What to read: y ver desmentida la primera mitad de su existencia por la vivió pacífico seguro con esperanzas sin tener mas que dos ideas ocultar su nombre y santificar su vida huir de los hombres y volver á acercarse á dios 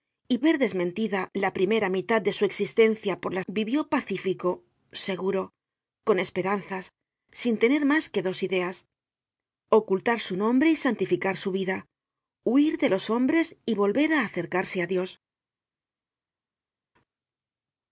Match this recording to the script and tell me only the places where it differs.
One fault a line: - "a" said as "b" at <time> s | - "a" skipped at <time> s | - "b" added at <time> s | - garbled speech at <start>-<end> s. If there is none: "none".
none